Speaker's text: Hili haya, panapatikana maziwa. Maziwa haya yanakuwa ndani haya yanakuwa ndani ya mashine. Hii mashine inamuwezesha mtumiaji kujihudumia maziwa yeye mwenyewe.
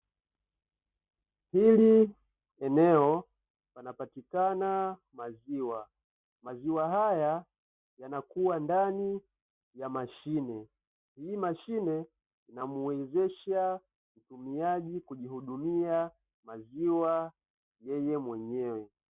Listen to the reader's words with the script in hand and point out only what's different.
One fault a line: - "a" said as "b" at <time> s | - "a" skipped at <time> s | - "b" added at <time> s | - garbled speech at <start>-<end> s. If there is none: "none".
- "haya" said as "eneo" at 2.6 s
- "haya yanakuwa ndani" skipped at 9.2 s